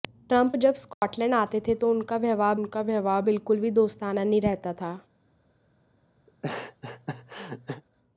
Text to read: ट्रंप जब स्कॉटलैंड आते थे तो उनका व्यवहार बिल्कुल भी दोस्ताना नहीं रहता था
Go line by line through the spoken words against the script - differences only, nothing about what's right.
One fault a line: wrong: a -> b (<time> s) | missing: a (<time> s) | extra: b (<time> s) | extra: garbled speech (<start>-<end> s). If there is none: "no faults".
extra: उनका व्यवहार (2.5 s)